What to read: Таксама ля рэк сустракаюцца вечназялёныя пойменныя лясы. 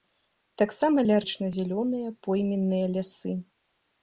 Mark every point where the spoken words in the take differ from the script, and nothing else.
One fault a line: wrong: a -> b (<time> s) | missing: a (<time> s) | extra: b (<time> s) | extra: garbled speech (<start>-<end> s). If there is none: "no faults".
missing: рэк сустракаюцца (1.2 s)